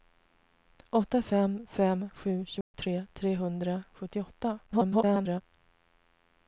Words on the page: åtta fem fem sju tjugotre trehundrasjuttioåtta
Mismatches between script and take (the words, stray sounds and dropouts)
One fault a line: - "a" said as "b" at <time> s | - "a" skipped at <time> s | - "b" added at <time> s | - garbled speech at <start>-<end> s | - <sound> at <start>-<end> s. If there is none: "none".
- dropout at 2.6-2.7 s
- garbled speech at 4.7-5.4 s